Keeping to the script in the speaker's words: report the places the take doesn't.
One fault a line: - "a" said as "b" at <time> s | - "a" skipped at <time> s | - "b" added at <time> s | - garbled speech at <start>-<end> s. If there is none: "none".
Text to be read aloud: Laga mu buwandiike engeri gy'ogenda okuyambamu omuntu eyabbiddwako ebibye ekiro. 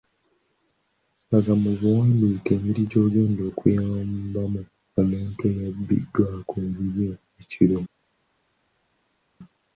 none